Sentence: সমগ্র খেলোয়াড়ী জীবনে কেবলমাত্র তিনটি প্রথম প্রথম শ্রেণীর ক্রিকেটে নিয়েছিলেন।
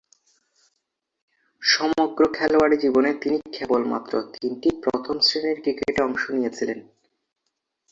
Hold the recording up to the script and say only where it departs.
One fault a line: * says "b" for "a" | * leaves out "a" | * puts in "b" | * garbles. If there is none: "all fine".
* puts in "তিনি"
* leaves out "প্রথম"
* puts in "অংশ"